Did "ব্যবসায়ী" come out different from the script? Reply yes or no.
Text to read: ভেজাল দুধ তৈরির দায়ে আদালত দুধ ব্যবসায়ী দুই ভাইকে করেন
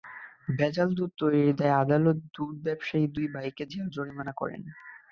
no